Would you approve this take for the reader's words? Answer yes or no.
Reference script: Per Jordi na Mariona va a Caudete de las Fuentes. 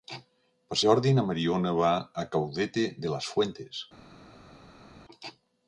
yes